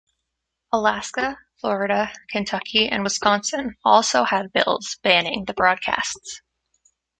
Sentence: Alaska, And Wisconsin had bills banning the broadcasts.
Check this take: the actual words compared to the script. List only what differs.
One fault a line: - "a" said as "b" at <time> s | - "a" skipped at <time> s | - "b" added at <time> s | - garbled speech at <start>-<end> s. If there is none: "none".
- "Florida Kentucky" added at 1.6 s
- "also" added at 3.8 s